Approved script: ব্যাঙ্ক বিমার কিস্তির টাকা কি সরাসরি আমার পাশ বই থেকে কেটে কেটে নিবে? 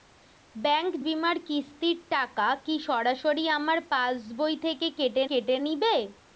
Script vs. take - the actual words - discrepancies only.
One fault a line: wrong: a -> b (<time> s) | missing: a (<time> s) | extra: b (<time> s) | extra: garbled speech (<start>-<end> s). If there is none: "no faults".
no faults